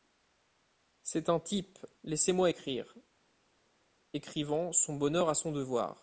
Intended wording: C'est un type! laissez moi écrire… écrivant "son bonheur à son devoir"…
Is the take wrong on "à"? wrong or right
right